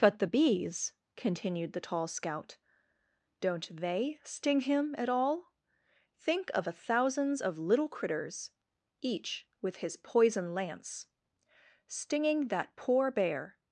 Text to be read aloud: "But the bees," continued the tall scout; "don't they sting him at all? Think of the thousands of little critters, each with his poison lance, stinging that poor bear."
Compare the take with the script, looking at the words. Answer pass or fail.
fail